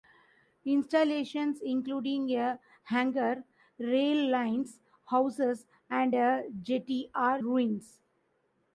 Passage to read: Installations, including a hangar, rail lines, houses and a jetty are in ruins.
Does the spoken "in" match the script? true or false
false